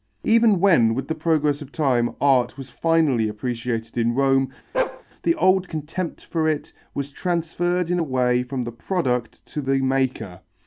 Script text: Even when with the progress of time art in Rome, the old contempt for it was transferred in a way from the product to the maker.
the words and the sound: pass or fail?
fail